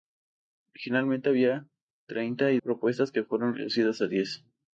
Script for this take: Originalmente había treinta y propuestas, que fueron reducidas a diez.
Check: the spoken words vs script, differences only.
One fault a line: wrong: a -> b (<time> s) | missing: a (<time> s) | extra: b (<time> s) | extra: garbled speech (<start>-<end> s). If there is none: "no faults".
no faults